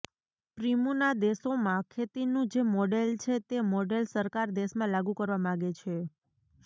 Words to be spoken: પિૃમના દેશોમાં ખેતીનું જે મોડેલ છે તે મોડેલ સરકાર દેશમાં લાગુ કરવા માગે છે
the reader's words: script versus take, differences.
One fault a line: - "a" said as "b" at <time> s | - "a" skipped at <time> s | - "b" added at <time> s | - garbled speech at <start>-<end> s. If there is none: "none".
none